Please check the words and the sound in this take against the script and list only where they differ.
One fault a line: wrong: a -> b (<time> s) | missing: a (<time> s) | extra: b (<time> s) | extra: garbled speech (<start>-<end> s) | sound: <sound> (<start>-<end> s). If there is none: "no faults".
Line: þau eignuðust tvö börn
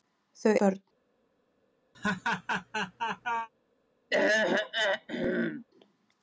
missing: eignuðust tvö (0.5 s)
sound: laugh (1.9-3.5 s)
sound: throat clearing (4.1-5.6 s)